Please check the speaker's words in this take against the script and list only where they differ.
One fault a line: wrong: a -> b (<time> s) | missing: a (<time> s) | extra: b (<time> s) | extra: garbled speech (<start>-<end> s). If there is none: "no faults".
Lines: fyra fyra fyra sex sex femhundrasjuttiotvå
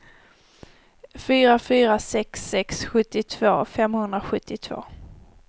wrong: fyra -> sex (2.0 s)
wrong: sex -> sjuttiotvå (2.9 s)